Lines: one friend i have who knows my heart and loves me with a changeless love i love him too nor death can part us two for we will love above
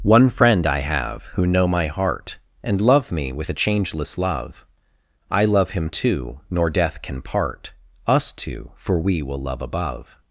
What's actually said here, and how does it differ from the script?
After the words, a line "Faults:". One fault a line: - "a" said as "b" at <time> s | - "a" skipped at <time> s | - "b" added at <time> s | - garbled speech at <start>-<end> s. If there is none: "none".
one friend i have who know my heart and love me with a changeless love i love him too nor death can part us two for we will love above
Faults:
- "knows" said as "know" at 1.4 s
- "loves" said as "love" at 2.8 s